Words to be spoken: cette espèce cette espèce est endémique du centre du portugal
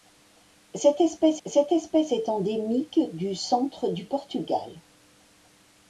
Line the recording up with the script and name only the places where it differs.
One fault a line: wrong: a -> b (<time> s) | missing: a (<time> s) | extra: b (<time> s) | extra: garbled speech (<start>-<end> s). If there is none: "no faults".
no faults